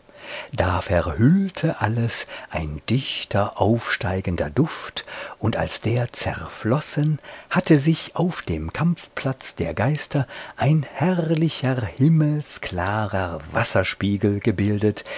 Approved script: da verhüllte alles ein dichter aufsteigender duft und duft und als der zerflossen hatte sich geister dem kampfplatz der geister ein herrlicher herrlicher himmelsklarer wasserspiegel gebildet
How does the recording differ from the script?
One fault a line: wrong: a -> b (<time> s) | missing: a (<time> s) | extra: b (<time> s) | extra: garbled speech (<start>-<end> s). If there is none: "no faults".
missing: duft und (5.6 s)
wrong: geister -> auf (8.2 s)
missing: herrlicher (11.9 s)